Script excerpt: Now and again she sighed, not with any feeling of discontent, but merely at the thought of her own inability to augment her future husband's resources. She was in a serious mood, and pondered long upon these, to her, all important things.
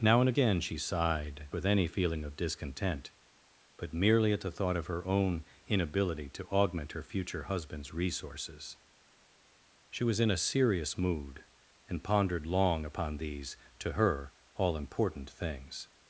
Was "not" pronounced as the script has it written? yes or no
no